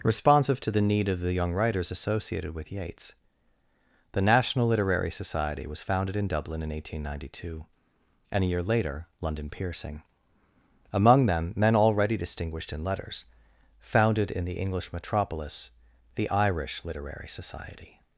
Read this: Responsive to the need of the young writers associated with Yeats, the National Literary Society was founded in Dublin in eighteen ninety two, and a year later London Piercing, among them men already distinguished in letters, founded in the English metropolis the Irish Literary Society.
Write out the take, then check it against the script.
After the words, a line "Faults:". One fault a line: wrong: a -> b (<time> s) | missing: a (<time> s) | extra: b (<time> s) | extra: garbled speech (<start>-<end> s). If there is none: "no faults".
Responsive to the need of the young writers associated with Yeats, the National Literary Society was founded in Dublin in eighteen ninety two, and a year later London Piercing, among them men already distinguished in letters, founded in the English metropolis the Irish Literary Society.
Faults:
no faults